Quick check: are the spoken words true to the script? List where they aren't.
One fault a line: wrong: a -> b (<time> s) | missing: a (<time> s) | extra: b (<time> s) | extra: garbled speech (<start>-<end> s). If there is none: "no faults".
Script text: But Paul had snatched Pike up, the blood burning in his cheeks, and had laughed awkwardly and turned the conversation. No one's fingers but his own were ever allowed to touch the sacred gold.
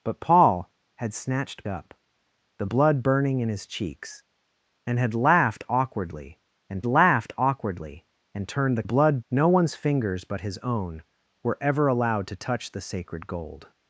missing: Pike (1.6 s)
extra: laughed awkwardly and (6.9 s)
wrong: conversation -> blood (8.8 s)